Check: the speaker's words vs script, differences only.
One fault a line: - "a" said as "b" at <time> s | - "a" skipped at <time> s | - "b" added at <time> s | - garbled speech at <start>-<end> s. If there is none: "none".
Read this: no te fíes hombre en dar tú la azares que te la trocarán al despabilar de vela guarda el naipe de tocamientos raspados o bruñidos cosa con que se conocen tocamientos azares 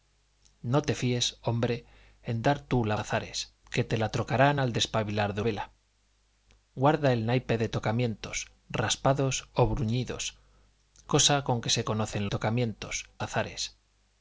none